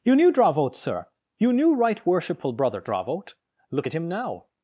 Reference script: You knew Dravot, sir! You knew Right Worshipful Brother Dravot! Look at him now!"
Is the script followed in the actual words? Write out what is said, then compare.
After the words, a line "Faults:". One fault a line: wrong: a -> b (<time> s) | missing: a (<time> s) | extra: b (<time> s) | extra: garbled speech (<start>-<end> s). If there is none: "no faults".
You knew Dravot, sir! You knew Right Worshipful Brother Dravot! Look at him now!"
Faults:
no faults